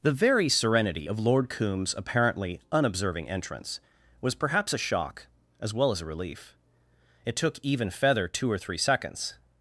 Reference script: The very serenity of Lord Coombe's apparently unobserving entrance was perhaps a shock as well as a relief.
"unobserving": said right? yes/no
yes